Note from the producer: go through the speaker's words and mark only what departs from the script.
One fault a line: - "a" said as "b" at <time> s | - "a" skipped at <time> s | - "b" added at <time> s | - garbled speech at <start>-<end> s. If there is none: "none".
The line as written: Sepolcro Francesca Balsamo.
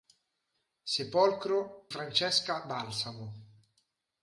none